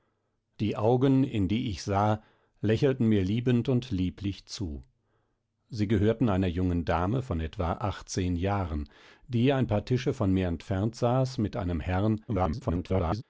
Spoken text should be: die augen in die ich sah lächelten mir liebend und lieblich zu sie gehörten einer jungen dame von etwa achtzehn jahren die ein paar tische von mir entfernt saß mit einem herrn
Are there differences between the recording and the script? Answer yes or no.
yes